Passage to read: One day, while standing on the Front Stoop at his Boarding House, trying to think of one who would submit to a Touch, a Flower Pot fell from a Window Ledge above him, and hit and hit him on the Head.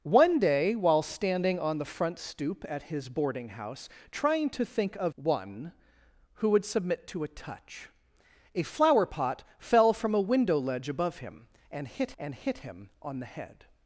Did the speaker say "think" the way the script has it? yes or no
yes